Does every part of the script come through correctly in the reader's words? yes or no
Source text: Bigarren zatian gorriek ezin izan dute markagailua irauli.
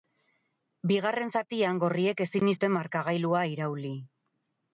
no